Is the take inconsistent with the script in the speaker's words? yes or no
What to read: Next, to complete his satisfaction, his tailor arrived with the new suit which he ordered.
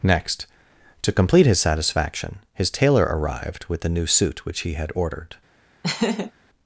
yes